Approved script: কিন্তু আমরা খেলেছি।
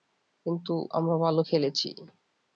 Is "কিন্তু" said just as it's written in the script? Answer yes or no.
yes